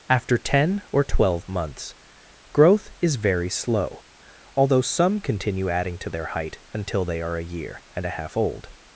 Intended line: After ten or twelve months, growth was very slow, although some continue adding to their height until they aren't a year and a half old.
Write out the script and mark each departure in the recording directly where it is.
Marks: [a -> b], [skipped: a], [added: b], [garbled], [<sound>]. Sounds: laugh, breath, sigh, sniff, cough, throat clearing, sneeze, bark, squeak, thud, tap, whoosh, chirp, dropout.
After ten or twelve months, growth [was -> is] very slow, although some continue adding to their height until they [aren't -> are] a year and a half old.